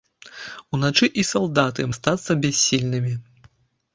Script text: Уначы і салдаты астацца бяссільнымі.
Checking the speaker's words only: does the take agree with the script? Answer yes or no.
yes